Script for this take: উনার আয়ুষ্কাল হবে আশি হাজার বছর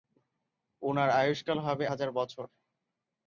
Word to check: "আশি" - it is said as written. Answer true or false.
false